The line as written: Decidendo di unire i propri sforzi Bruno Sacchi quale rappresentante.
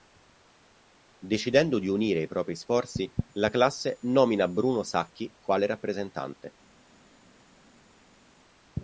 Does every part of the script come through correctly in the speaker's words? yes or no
no